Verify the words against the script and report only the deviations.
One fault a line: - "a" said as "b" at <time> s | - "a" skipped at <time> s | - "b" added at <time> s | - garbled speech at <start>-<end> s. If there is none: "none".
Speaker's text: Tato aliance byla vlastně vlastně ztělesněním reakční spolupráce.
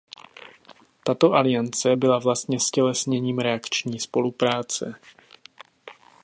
- "vlastně" skipped at 2.6 s